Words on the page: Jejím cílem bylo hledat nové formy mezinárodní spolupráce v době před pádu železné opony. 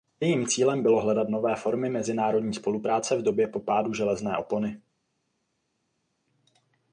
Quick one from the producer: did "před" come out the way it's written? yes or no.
no